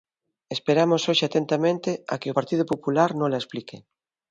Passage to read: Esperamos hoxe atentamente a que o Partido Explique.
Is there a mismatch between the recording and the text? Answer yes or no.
yes